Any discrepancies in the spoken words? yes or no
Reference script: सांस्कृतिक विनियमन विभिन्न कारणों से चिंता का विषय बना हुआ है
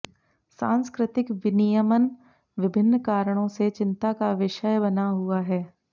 no